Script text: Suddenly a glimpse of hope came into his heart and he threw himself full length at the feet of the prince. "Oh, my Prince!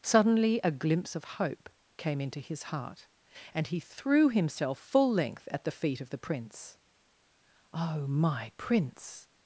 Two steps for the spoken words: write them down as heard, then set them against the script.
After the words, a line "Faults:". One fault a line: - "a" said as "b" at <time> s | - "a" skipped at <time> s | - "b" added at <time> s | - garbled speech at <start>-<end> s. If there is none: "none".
Suddenly a glimpse of hope came into his heart and he threw himself full length at the feet of the prince. "Oh, my Prince!
Faults:
none